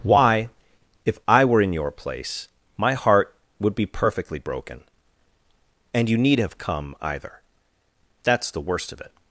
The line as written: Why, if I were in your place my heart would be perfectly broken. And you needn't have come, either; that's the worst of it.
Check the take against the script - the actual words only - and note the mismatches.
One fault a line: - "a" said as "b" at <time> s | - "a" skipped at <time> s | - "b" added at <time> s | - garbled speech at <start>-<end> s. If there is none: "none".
- "needn't" said as "need" at 6.2 s